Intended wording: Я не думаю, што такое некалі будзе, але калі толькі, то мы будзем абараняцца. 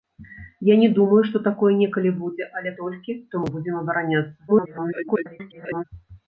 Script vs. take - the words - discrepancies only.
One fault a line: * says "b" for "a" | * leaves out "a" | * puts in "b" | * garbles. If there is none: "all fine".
* leaves out "калі"
* garbles